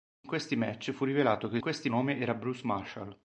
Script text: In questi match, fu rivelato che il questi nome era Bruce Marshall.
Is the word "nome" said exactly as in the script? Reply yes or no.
yes